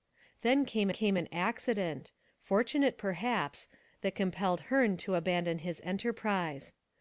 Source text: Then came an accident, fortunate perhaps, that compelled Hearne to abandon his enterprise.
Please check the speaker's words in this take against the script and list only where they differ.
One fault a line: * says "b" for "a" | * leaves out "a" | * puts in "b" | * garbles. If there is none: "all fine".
* puts in "came"